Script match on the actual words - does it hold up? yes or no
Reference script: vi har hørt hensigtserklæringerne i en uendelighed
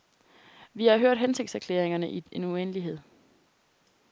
yes